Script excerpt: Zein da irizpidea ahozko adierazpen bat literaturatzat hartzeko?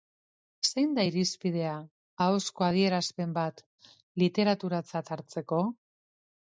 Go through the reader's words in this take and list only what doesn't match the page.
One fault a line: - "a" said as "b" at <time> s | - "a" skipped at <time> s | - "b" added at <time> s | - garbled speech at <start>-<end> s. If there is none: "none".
none